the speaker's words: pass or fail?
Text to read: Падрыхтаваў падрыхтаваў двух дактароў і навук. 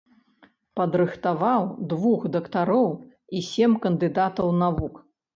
fail